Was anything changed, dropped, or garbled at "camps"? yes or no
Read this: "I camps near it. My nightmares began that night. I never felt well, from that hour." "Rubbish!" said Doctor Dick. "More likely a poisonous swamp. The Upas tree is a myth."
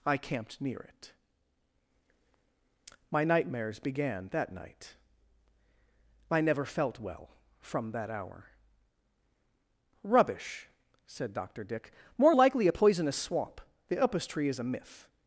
yes